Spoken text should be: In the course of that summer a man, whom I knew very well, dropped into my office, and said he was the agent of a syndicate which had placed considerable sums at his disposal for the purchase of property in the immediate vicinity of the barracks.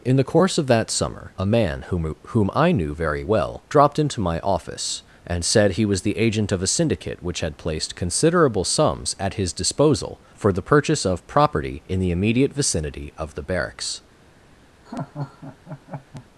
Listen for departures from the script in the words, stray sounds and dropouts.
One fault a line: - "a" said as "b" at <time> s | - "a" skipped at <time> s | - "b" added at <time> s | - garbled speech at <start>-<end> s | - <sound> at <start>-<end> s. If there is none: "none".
- "whom" added at 2.3 s
- laugh at 14.9-16.3 s